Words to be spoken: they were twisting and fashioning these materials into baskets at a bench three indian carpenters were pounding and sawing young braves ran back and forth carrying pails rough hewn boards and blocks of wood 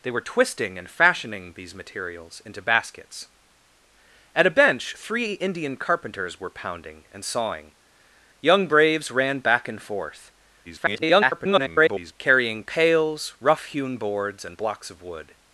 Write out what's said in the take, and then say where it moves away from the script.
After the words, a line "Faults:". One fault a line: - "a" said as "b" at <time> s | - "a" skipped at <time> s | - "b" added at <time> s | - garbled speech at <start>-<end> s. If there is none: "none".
they were twisting and fashioning these materials into baskets at a bench three indian carpenters were pounding and sawing young braves ran back and forth [garbled] carrying pails rough hewn boards and blocks of wood
Faults:
- garbled speech at 10.6-12.1 s